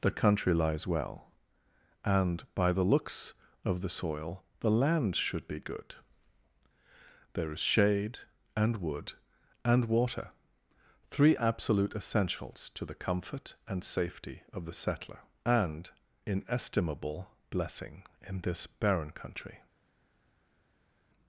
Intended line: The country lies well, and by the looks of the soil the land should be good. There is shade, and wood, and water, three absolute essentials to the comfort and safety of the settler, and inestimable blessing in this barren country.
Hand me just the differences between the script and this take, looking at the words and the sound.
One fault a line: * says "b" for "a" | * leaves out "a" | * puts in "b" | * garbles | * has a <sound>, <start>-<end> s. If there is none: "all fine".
all fine